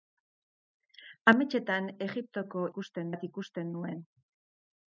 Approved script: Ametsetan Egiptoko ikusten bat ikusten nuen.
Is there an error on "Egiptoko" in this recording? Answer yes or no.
no